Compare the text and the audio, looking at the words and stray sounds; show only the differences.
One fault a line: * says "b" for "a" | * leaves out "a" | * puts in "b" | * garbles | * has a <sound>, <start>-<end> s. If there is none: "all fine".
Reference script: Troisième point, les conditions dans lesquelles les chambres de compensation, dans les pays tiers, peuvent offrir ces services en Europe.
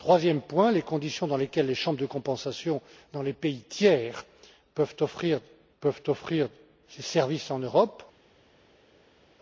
* puts in "peuvent offrir"